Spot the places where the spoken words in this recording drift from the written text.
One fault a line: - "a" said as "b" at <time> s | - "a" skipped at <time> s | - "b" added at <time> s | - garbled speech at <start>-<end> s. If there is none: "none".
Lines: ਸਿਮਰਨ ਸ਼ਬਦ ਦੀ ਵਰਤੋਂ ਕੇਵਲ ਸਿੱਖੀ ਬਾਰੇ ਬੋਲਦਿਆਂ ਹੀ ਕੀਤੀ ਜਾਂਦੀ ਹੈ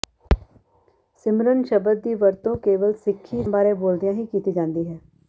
none